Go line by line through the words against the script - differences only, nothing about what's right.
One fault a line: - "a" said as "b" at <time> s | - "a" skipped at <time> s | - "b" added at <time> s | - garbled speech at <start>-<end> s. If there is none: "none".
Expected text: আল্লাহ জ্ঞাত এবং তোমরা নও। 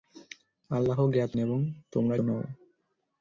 none